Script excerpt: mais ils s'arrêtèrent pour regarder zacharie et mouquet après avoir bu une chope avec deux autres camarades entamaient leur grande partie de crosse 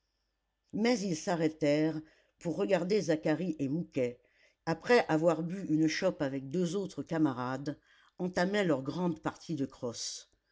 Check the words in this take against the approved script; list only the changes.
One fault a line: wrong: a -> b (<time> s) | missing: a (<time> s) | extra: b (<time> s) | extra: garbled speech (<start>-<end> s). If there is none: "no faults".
no faults